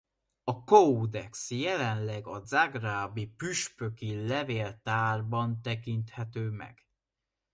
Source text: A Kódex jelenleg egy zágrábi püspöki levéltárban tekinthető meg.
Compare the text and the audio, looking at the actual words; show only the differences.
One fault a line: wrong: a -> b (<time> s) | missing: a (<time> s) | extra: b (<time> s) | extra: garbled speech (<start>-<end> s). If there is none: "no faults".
wrong: egy -> a (2.3 s)